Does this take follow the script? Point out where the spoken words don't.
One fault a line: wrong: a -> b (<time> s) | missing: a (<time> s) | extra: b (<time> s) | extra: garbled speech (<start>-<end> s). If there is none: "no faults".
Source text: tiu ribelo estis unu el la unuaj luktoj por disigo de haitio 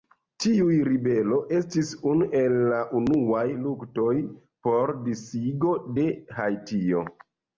no faults